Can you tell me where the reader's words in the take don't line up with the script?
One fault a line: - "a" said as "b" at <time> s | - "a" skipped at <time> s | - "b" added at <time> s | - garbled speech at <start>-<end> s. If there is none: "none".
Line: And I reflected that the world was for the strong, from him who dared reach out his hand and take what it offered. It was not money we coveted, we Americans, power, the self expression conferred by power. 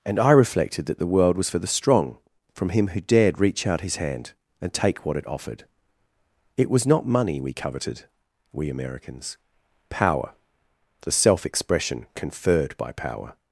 none